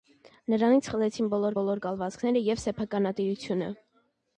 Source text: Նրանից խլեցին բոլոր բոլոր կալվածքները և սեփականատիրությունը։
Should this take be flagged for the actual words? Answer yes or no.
no